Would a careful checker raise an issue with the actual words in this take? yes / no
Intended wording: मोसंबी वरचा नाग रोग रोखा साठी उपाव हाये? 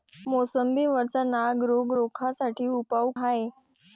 no